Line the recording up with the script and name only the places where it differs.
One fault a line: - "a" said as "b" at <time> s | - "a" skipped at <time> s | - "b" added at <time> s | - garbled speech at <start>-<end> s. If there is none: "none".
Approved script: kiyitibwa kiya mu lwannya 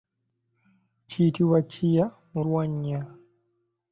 none